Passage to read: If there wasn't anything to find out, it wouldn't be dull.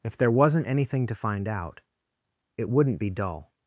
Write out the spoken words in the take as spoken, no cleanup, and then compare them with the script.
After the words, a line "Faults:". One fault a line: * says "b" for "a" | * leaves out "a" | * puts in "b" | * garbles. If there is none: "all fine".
If there wasn't anything to find out, it wouldn't be dull.
Faults:
all fine